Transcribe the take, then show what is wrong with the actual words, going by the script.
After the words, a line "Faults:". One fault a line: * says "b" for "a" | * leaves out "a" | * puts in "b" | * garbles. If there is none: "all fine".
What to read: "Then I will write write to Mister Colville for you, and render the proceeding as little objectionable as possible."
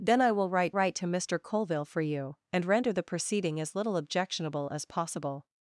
"Then I will write write to Mister Colville for you, and render the proceeding as little objectionable as possible."
Faults:
all fine